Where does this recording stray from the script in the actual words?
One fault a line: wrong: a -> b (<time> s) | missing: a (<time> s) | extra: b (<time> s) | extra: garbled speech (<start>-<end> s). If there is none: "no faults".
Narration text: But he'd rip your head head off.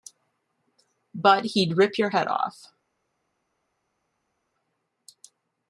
missing: head (2.3 s)